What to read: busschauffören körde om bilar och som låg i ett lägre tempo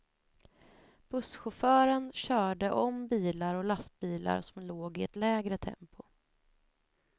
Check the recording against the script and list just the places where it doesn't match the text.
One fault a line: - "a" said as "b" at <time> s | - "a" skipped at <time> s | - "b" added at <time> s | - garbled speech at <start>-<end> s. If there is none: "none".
- "lastbilar" added at 3.6 s